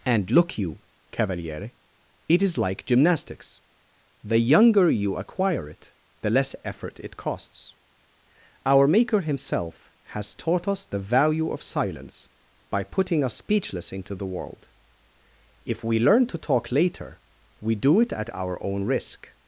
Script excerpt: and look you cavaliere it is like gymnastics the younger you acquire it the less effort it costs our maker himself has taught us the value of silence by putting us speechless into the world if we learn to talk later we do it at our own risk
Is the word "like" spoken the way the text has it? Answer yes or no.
yes